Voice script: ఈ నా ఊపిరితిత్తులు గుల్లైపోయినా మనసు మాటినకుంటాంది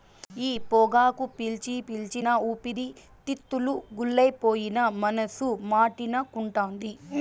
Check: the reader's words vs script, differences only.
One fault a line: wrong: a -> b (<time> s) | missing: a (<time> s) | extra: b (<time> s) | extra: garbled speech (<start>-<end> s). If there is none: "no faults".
extra: పొగాకు పీల్చి పీల్చి (0.7 s)